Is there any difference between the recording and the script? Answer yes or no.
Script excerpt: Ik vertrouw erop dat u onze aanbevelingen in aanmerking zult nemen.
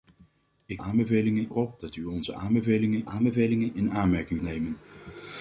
yes